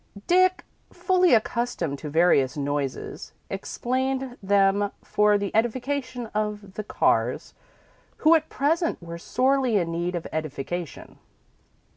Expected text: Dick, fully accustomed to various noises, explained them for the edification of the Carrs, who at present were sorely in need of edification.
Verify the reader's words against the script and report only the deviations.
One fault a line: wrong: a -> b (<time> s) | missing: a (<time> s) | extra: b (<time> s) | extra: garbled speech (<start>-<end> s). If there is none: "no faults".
no faults